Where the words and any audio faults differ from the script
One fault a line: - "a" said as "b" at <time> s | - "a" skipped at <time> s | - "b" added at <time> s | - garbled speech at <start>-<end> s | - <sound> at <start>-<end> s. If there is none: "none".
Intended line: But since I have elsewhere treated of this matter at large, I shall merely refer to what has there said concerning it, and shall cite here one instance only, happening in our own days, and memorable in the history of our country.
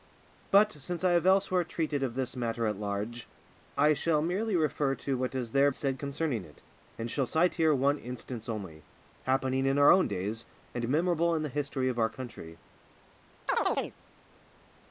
- chirp at 13.5-14.0 s